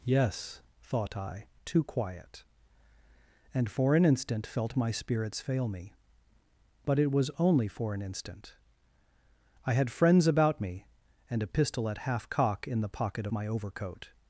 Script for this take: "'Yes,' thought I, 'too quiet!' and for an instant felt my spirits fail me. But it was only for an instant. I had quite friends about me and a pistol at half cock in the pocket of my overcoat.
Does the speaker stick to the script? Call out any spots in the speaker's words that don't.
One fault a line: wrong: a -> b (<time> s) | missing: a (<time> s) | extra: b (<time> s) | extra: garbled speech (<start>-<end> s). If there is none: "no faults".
missing: quite (9.9 s)